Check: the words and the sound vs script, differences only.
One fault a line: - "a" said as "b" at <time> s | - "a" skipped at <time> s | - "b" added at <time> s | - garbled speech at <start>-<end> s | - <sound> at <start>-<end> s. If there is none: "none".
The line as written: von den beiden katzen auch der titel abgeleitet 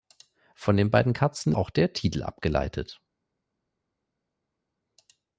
none